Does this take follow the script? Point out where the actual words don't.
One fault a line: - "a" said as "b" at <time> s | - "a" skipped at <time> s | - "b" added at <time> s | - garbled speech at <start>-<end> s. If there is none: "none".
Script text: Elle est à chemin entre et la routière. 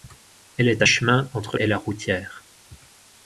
none